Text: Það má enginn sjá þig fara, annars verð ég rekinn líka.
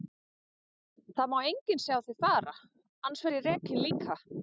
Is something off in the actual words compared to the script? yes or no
no